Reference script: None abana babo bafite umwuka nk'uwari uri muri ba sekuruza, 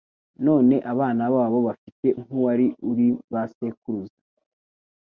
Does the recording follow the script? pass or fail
fail